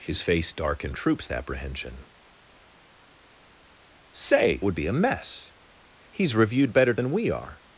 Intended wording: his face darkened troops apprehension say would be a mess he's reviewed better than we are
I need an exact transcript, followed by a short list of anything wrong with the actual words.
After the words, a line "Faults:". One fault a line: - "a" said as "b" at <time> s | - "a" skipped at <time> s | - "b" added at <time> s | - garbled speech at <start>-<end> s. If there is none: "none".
his face darkened troops apprehension say would be a mess he's reviewed better than we are
Faults:
none